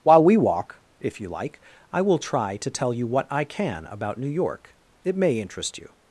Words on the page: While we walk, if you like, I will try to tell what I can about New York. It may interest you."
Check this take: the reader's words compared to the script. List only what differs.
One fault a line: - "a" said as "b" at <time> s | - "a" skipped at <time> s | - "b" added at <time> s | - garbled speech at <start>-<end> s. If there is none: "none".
- "you" added at 2.9 s